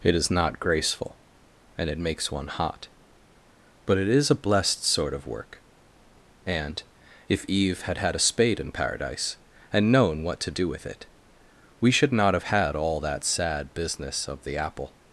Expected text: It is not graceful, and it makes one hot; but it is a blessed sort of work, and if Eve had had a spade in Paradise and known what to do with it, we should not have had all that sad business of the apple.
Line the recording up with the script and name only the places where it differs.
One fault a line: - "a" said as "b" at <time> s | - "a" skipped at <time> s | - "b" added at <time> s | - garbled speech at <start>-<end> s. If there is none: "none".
none